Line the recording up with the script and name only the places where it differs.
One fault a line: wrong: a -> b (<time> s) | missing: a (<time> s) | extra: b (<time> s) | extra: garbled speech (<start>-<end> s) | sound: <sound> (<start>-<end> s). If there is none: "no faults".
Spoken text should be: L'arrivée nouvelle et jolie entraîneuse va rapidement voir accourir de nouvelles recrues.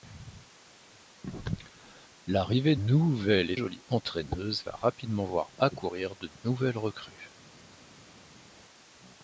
no faults